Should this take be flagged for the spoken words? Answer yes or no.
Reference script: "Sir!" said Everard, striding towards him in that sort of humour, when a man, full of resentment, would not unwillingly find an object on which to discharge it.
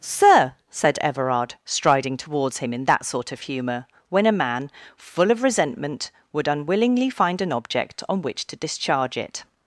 yes